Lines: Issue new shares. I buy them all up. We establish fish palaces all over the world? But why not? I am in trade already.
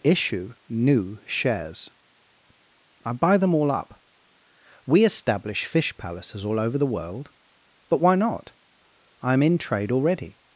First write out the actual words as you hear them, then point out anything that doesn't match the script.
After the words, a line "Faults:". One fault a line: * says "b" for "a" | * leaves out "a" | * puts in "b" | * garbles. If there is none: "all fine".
Issue new shares. I buy them all up. We establish fish palaces all over the world? But why not? I am in trade already.
Faults:
all fine